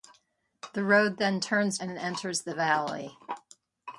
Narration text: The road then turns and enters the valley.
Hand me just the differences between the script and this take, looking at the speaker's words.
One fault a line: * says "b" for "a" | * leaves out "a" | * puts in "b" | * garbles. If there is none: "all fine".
all fine